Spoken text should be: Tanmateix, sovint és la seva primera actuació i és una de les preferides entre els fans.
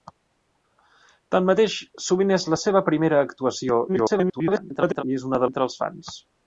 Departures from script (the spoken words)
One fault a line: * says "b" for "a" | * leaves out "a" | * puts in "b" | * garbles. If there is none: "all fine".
* garbles
* leaves out "les preferides"